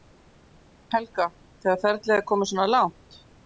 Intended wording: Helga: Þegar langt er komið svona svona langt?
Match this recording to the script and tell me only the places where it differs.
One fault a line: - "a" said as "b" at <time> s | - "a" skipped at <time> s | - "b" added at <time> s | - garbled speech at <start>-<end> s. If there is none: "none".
- "langt" said as "ferlið" at 1.9 s
- "svona" skipped at 2.7 s